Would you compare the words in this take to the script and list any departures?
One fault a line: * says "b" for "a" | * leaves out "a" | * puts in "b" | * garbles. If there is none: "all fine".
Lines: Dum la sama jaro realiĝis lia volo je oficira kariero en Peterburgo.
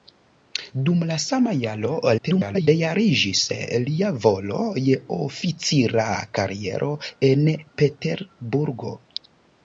* garbles